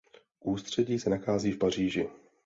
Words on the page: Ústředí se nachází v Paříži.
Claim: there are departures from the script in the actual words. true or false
false